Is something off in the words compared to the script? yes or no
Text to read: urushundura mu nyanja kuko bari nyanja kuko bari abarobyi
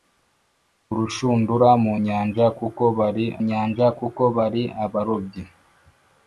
no